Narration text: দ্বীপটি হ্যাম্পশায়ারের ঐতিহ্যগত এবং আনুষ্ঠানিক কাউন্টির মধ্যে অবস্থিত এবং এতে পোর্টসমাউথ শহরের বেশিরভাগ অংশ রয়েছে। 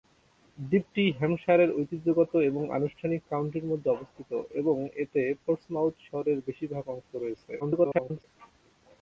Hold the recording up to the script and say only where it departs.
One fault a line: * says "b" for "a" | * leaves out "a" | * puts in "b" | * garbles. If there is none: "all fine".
* garbles